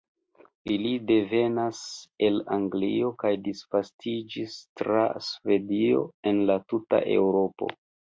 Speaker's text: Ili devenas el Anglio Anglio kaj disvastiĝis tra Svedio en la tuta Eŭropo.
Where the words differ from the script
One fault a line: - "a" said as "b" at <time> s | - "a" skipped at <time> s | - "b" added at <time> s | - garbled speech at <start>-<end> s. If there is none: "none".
- "Anglio" skipped at 3.1 s